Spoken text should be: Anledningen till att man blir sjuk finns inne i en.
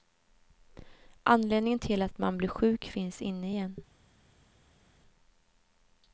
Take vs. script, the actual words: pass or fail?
pass